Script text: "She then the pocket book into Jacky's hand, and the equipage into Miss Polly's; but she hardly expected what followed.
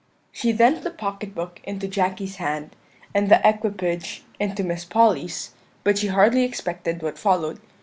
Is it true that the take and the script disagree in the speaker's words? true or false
false